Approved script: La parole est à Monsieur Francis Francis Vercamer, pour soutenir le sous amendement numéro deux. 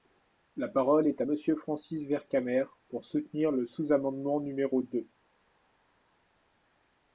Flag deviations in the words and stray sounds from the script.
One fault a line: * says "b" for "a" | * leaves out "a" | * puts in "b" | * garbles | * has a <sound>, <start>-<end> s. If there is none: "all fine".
* leaves out "Francis"